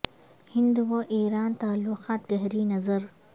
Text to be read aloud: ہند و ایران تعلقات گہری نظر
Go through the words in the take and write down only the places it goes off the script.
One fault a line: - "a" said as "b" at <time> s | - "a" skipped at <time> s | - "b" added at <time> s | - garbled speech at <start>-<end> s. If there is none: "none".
none